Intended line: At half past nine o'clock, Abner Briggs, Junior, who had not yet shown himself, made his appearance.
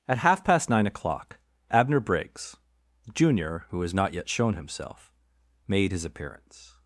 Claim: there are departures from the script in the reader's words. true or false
true